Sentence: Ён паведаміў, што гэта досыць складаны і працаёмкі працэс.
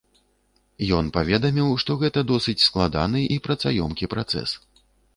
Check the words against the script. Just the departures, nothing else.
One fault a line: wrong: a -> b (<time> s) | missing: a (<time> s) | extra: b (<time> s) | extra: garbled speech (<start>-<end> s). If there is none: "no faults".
no faults